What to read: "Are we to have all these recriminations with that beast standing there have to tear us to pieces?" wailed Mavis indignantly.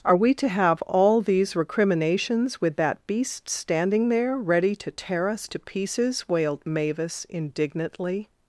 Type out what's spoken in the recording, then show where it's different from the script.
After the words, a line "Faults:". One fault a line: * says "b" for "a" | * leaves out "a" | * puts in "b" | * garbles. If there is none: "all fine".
"Are we to have all these recriminations with that beast standing there ready to tear us to pieces?" wailed Mavis indignantly.
Faults:
* says "ready" for "have"